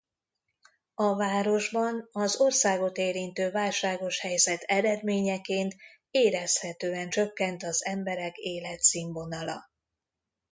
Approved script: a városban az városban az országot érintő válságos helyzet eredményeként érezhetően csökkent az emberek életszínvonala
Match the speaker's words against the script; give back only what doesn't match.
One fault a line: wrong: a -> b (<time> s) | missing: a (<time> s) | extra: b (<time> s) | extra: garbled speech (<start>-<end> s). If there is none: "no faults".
missing: városban az (2.4 s)